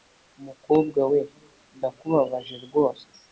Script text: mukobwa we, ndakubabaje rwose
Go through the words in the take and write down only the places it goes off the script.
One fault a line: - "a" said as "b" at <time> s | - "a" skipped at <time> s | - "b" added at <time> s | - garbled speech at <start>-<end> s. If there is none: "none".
none